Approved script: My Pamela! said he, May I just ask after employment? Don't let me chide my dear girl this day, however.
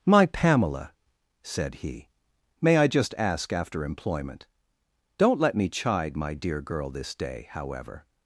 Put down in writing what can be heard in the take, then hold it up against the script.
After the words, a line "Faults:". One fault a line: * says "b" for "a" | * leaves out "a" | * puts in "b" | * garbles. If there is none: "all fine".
My Pamela! said he, May I just ask after employment? Don't let me chide my dear girl this day, however.
Faults:
all fine